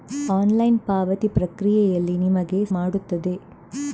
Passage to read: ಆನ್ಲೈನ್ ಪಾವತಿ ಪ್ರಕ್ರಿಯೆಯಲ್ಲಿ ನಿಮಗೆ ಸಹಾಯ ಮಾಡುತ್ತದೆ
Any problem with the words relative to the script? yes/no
yes